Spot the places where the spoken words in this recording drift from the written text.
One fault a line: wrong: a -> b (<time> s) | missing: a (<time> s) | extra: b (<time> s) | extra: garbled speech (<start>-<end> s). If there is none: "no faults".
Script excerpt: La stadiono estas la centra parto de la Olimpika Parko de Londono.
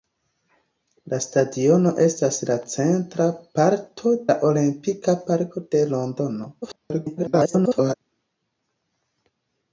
missing: de (4.2 s)
extra: garbled speech (6.6-7.9 s)